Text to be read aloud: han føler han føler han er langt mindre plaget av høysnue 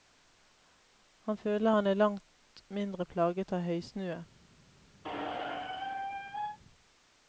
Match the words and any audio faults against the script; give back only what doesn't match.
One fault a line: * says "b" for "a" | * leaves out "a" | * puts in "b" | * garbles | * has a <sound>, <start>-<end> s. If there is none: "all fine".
* leaves out "føler han"
* has a squeak, 5.0-6.6 s